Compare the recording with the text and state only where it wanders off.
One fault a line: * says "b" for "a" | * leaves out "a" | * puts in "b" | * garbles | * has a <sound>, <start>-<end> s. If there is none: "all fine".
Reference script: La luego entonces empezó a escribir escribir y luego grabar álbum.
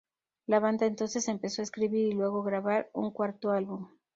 * says "banda" for "luego"
* leaves out "escribir"
* puts in "un cuarto"